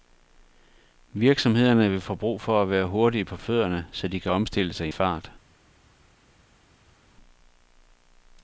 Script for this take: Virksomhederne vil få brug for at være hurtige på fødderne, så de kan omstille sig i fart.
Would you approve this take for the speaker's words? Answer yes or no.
yes